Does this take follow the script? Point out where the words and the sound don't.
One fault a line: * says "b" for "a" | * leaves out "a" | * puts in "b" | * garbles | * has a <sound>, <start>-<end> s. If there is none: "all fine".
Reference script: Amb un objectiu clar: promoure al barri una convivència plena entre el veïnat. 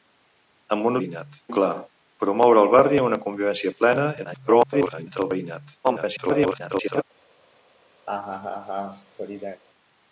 * says "veïnat" for "objectiu"
* garbles
* garbles
* has a laugh, 8.1-9.6 s